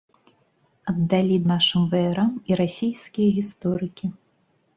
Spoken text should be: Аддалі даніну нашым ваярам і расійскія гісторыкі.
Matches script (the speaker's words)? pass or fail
fail